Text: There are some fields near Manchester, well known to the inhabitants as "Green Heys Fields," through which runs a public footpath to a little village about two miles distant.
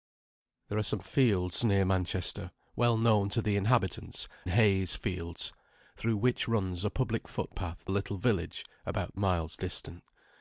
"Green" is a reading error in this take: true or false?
true